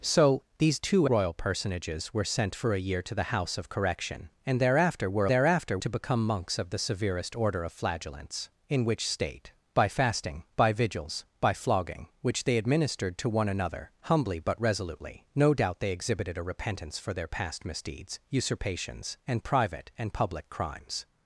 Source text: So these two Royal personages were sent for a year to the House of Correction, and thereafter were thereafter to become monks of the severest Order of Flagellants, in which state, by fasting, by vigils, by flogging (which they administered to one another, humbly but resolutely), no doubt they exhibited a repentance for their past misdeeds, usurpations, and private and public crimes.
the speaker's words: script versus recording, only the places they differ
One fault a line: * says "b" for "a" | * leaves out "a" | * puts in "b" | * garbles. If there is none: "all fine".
all fine